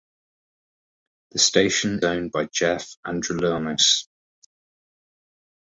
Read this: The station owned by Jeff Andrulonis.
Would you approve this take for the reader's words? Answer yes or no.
yes